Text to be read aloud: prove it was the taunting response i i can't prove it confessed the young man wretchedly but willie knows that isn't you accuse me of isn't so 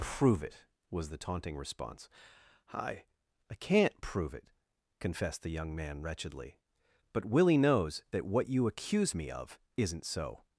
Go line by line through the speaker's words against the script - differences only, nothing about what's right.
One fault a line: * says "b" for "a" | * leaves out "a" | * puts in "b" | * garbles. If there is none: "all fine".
* says "what" for "isn't"